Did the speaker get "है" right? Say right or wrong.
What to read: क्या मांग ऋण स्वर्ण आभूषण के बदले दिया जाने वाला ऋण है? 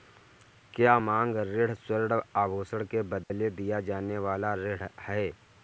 right